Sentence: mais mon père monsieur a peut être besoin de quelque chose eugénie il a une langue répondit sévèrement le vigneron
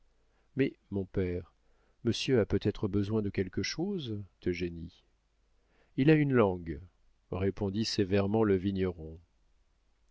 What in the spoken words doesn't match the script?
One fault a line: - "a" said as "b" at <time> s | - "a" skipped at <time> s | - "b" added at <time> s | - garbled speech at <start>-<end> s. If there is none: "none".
none